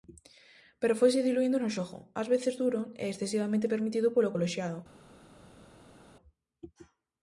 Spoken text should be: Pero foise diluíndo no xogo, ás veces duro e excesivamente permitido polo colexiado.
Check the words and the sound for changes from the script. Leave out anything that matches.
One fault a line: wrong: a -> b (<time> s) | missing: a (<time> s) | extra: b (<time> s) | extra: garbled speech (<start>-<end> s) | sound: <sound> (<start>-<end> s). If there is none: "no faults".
no faults